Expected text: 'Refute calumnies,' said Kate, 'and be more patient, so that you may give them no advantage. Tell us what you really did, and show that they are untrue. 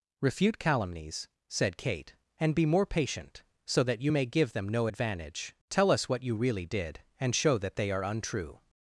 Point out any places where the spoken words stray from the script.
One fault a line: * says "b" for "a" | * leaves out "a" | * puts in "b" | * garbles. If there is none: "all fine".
all fine